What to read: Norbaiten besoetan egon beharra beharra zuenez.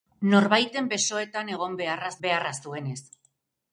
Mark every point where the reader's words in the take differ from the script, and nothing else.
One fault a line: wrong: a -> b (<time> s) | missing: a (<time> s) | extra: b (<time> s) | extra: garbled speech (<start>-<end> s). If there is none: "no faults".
no faults